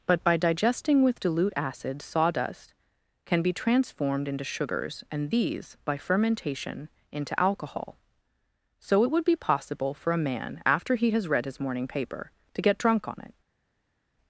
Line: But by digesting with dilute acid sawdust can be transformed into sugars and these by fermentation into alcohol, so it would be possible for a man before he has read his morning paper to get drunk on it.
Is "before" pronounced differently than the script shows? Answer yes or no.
yes